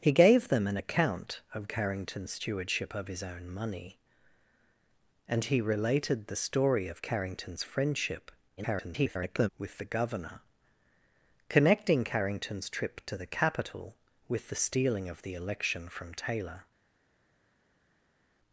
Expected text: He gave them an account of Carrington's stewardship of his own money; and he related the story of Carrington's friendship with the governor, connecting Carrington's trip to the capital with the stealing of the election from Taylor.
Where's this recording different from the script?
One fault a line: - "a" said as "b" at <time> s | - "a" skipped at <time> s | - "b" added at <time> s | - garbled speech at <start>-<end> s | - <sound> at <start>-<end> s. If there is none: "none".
- garbled speech at 8.6-9.5 s